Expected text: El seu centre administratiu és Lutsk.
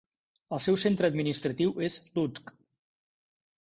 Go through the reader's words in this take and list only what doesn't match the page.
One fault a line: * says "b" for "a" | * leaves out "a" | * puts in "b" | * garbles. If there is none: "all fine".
all fine